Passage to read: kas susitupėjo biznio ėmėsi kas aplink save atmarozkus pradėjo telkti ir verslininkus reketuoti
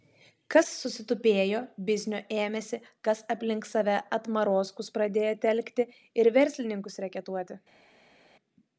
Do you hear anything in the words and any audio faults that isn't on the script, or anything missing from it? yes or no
no